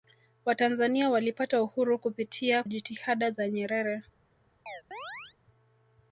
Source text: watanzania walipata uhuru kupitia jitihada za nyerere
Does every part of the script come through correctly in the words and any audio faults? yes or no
no